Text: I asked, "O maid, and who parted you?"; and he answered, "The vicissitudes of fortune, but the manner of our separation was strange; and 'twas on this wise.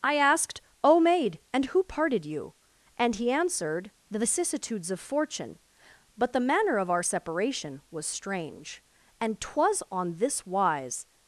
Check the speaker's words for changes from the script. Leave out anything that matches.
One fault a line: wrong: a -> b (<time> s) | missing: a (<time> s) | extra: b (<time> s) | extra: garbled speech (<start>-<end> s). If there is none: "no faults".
no faults